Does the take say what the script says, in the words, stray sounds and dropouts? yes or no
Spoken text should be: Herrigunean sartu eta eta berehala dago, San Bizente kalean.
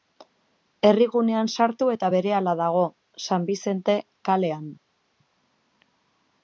no